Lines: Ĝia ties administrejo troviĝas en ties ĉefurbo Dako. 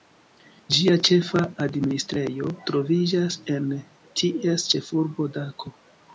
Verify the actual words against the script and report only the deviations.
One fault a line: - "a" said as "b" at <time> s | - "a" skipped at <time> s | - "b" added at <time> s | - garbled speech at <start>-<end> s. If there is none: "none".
- "ties" said as "ĉefa" at 1.1 s